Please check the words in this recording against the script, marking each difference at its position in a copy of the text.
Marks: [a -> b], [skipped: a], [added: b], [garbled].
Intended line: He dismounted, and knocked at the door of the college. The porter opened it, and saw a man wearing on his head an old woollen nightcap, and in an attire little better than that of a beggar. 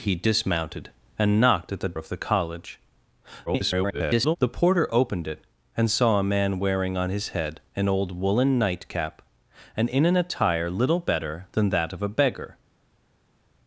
He dismounted, and knocked at the [skipped: door] of the college. [garbled] The porter opened it, and saw a man wearing on his head an old woollen nightcap, and in an attire little better than that of a beggar.